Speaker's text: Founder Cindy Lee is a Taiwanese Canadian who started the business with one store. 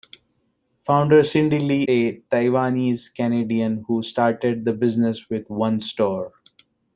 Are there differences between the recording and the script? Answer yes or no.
yes